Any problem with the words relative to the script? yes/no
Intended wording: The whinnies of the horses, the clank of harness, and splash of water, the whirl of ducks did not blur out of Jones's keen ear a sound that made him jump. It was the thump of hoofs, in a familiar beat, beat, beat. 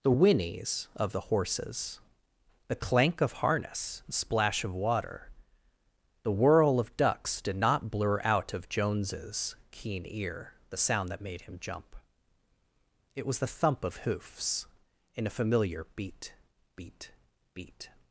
yes